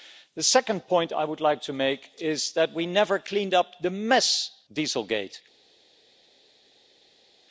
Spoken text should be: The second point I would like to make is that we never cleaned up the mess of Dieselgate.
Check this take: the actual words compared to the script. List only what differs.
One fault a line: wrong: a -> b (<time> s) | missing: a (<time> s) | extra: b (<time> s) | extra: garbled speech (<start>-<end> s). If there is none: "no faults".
missing: of (4.5 s)